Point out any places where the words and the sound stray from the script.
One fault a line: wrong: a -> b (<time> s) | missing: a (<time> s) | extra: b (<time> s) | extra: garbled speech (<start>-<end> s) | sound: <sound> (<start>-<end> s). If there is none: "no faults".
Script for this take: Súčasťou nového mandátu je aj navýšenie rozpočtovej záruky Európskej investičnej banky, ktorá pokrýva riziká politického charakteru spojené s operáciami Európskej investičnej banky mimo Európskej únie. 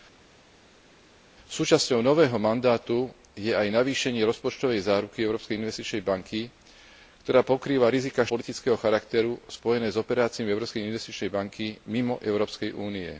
no faults